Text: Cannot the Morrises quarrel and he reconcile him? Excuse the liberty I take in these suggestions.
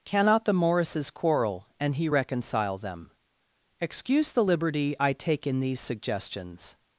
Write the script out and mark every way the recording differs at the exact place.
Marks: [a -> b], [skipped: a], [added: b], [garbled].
Cannot the Morrises quarrel and he reconcile [him? -> them] Excuse the liberty I take in these suggestions.